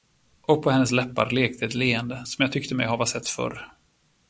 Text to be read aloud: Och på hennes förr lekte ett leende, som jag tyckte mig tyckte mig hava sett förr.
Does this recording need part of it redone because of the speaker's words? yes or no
yes